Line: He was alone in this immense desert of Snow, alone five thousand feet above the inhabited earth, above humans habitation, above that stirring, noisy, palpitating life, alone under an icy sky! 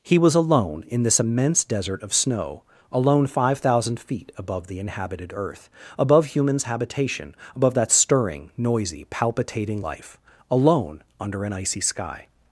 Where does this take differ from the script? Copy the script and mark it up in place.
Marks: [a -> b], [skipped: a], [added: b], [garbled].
He was alone in this immense desert of Snow, alone five thousand feet above the inhabited earth, above humans habitation, above that stirring, noisy, palpitating life, alone under an icy sky!